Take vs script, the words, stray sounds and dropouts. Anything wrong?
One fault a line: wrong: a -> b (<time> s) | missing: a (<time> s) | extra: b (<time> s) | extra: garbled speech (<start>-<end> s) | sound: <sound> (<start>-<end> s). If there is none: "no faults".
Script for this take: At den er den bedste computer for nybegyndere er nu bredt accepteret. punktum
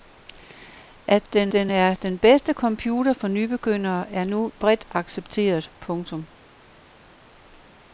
extra: den (1.5 s)